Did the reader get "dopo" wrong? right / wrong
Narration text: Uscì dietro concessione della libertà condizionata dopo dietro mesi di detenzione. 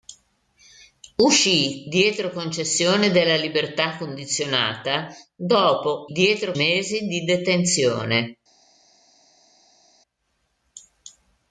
right